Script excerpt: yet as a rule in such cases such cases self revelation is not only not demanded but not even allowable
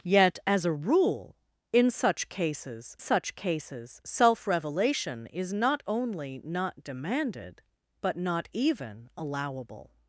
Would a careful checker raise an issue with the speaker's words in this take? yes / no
no